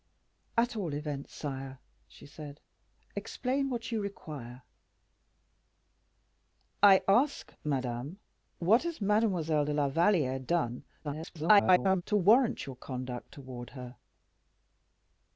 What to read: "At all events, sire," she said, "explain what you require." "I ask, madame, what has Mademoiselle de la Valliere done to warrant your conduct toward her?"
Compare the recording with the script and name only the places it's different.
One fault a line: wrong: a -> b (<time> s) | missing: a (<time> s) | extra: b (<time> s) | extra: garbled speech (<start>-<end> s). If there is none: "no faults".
extra: garbled speech (11.0-12.0 s)